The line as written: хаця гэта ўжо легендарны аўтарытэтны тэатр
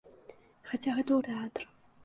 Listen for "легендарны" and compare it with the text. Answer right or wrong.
wrong